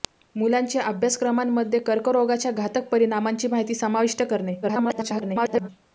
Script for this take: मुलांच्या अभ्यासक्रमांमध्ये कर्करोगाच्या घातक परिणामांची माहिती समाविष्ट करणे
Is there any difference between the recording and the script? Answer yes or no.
yes